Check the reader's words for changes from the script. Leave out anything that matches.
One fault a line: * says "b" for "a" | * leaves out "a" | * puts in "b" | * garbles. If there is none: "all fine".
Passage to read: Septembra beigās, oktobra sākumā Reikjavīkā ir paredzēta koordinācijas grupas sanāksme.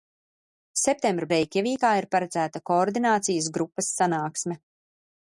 * leaves out "beigās oktobra sākumā"